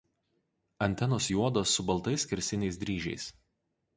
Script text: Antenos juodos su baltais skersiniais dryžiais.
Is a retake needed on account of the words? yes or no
no